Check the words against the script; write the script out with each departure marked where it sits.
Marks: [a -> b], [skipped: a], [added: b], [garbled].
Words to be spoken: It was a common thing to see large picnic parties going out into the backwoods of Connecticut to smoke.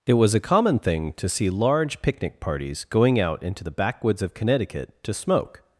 It was a common thing to see large picnic parties going out into the backwoods of Connecticut to smoke.